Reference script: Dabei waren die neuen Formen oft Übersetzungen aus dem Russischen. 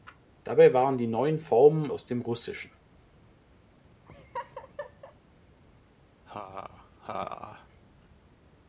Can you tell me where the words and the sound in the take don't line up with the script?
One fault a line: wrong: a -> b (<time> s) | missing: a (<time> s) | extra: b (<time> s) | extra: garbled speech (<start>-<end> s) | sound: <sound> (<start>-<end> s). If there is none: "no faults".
missing: oft Übersetzungen (1.9 s)
sound: laugh (4.1-5.2 s)
sound: laugh (6.3-7.7 s)